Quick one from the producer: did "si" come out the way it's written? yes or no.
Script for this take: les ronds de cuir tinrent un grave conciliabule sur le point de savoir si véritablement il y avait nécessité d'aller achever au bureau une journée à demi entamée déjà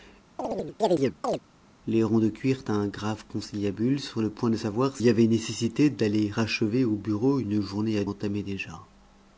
no